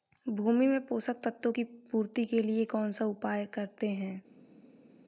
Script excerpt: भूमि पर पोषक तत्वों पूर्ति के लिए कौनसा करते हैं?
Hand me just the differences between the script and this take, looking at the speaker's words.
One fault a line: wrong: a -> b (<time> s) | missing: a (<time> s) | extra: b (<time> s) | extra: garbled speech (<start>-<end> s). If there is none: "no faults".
wrong: पर -> में (0.7 s)
extra: की (1.5 s)
extra: उपाय (3.1 s)